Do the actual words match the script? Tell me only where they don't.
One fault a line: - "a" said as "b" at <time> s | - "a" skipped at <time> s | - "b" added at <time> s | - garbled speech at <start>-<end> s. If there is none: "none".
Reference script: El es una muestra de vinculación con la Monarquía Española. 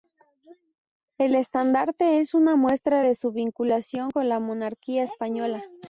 - "estandarte" added at 1.4 s
- "su" added at 3.2 s